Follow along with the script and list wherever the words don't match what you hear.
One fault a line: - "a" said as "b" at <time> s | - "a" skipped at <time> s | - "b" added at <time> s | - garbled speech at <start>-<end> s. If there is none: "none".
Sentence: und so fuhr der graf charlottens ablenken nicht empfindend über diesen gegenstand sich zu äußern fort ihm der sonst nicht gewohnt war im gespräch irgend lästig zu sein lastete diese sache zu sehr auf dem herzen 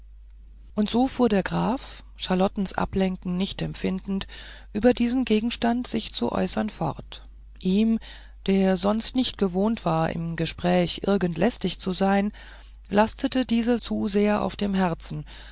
- "sache" skipped at 13.8 s